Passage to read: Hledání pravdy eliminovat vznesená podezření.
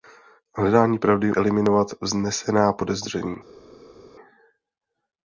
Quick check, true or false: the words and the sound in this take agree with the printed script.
true